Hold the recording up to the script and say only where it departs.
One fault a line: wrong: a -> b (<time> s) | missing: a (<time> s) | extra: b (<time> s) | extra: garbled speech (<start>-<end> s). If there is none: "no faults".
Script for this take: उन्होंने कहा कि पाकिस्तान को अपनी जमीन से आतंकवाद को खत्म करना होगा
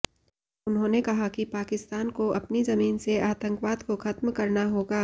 no faults